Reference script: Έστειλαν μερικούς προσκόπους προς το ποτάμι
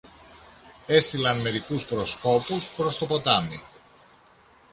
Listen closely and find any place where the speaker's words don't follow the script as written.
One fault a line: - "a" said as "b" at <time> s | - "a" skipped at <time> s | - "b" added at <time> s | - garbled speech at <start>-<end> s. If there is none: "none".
none